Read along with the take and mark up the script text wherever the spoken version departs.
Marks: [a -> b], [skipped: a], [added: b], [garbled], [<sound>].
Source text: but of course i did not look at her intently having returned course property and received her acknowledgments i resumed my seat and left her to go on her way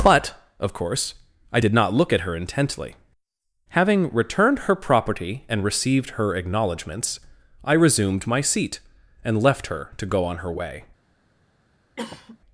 but of course i did not look at her intently having returned [course -> her] property and received her acknowledgments i resumed my seat and left her to go on her way [cough]